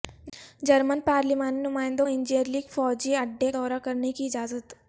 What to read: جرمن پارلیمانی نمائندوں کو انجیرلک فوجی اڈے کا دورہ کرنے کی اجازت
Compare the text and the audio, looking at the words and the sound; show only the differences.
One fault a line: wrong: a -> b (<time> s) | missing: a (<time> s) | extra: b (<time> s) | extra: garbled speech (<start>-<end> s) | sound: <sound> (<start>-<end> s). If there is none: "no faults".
missing: کو (2.0 s)
missing: کا (3.5 s)